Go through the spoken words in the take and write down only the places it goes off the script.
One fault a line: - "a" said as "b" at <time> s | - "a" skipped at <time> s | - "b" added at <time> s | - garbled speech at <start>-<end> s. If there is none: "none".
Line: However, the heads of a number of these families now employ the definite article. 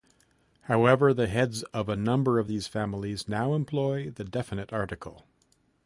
none